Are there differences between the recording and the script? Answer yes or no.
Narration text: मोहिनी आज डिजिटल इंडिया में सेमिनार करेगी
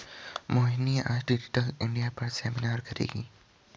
yes